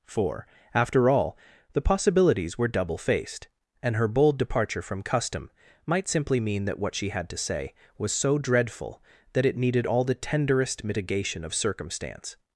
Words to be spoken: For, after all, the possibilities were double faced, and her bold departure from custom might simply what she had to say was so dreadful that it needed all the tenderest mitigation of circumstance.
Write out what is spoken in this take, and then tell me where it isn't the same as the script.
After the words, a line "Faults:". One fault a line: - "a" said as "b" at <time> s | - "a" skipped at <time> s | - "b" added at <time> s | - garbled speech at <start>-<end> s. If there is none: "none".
For, after all, the possibilities were double faced, and her bold departure from custom might simply mean that what she had to say was so dreadful that it needed all the tenderest mitigation of circumstance.
Faults:
- "mean that" added at 6.4 s